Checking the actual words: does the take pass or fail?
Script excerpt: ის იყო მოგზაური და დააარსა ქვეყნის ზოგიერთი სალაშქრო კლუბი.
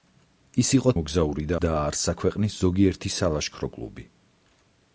pass